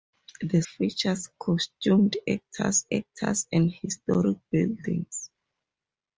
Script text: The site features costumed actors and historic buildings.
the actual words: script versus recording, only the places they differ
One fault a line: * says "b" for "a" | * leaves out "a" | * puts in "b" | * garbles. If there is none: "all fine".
* leaves out "site"
* puts in "actors"